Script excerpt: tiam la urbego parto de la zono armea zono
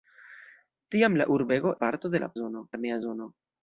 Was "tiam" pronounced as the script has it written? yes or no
yes